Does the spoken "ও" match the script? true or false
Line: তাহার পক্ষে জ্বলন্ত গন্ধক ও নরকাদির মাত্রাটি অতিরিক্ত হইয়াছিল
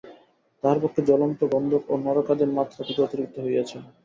true